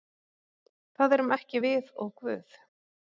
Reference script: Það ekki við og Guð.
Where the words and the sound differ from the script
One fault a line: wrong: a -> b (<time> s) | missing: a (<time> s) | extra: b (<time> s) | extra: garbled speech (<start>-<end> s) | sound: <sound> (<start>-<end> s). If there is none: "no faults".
extra: erum (1.2 s)